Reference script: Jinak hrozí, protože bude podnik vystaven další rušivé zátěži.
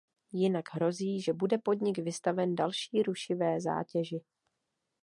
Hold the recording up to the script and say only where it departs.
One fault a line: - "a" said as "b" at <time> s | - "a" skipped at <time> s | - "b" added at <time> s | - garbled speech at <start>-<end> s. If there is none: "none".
- "protože" said as "že" at 1.2 s